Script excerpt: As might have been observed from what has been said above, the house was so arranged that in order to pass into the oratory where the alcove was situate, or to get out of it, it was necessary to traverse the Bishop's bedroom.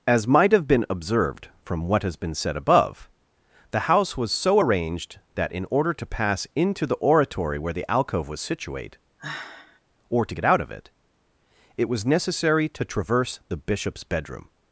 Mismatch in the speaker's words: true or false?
false